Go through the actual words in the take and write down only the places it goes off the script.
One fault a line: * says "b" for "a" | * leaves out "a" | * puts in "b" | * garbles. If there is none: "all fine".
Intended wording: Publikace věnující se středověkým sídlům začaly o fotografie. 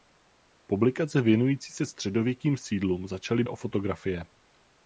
all fine